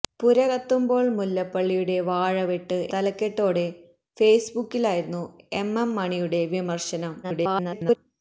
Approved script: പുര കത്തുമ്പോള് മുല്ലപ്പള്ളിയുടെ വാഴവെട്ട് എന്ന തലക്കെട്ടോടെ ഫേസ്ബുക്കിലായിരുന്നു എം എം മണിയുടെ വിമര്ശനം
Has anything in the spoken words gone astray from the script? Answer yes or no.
yes